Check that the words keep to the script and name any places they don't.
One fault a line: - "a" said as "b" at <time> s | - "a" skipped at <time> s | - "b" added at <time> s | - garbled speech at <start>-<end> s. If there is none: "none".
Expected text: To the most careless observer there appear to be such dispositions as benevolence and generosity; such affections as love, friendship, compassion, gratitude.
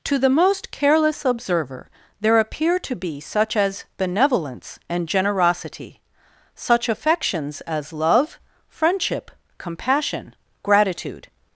- "dispositions" skipped at 3.5 s